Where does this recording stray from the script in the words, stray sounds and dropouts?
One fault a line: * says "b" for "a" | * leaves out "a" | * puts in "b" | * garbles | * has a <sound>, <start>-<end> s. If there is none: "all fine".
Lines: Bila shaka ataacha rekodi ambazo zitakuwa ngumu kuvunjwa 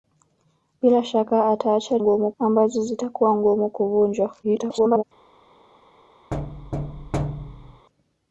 * says "ngumu" for "rekodi"
* garbles
* has a thud, 6.3-7.9 s